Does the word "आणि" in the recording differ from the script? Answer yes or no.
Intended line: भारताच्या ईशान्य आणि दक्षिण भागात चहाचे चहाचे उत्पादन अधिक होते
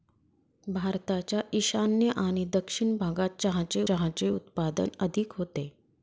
no